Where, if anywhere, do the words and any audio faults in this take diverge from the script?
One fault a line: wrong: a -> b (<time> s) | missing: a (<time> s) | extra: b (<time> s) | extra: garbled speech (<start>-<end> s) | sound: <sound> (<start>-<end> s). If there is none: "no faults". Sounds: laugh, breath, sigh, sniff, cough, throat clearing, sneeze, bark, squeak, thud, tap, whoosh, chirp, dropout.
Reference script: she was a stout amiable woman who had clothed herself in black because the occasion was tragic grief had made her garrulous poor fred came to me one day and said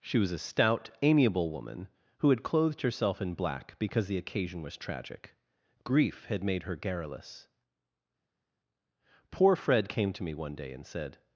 no faults